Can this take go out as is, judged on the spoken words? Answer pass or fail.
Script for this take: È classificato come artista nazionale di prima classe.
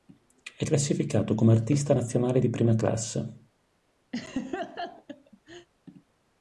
pass